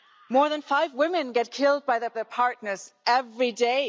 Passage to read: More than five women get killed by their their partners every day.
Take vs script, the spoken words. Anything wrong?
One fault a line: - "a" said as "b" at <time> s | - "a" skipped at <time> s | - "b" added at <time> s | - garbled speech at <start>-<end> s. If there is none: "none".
none